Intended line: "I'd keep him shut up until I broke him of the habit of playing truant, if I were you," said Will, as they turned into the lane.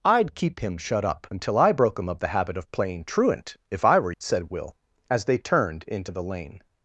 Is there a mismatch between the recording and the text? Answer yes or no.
yes